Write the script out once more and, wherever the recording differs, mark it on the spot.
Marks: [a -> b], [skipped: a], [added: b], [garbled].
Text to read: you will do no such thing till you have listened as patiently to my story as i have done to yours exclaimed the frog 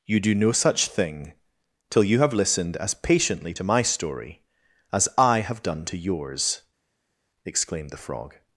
you [skipped: will] do no such thing till you have listened as patiently to my story as i have done to yours exclaimed the frog